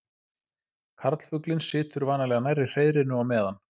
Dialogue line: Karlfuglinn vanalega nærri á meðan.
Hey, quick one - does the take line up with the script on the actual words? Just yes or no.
no